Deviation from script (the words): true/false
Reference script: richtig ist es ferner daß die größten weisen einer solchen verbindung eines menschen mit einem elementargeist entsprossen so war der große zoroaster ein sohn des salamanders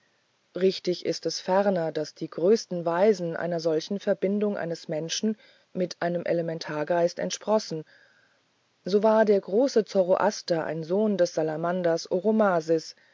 false